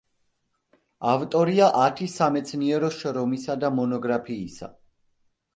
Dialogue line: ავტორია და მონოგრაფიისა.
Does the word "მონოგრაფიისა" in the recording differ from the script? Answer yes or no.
no